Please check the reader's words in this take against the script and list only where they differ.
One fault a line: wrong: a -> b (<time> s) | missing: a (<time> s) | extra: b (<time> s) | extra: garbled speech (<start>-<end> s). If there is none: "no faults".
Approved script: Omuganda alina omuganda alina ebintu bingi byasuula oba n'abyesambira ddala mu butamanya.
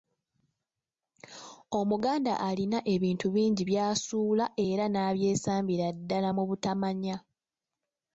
missing: omuganda alina (2.8 s)
wrong: oba -> era (4.7 s)